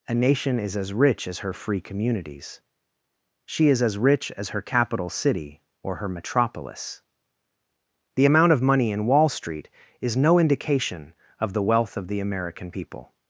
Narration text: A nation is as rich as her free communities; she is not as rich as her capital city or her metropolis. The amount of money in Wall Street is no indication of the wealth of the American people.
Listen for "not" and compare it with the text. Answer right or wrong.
wrong